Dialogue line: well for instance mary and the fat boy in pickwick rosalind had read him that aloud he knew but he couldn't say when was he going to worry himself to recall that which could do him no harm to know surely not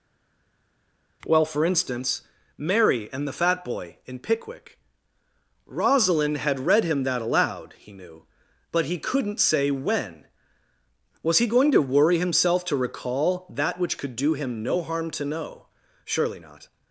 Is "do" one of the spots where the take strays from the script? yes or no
no